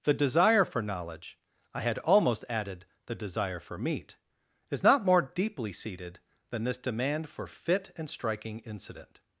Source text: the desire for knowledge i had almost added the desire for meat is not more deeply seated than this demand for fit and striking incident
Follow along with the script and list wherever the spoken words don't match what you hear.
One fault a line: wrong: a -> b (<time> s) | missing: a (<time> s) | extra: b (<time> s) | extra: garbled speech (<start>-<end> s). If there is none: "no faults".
no faults